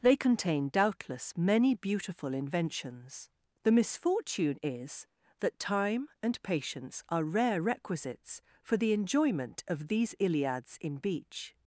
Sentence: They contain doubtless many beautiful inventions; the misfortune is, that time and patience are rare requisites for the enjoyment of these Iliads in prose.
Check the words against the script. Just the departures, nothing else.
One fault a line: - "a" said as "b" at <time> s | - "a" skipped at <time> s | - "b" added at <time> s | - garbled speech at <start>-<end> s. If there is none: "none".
- "prose" said as "beach" at 11.0 s